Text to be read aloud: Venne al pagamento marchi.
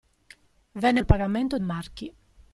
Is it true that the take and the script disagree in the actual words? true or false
false